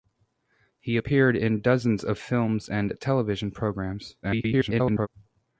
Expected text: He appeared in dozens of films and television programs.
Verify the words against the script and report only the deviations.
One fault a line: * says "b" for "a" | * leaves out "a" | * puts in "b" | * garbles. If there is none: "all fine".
* garbles